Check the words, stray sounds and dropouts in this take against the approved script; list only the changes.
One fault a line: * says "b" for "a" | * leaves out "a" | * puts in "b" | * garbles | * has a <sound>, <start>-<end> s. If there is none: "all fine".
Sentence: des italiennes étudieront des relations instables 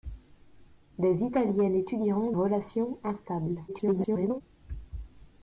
* leaves out "des"
* garbles